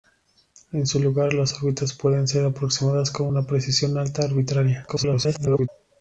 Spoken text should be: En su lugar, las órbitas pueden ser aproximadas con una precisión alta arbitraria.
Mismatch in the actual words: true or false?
true